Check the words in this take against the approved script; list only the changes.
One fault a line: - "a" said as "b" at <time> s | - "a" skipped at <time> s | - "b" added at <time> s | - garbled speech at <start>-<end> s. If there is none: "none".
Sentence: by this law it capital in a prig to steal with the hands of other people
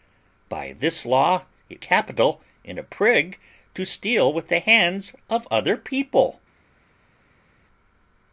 none